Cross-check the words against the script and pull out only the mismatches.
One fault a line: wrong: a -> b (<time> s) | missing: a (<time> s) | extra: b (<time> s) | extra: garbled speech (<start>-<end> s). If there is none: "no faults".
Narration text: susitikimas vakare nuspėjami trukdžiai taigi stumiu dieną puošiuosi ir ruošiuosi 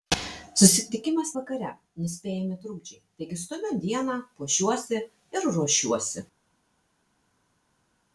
no faults